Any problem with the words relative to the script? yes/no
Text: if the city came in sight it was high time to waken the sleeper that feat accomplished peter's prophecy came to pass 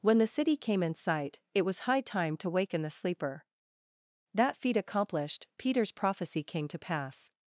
yes